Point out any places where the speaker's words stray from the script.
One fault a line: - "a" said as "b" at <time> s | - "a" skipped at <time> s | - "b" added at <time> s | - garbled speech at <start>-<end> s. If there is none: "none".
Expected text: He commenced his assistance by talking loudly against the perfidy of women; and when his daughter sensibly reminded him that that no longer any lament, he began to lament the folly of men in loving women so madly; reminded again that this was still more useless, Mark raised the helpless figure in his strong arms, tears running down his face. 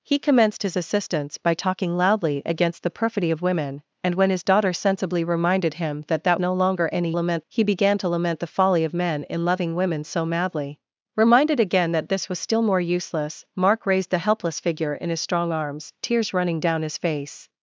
none